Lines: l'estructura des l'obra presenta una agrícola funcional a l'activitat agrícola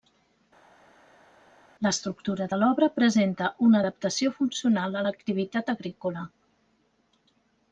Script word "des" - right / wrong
wrong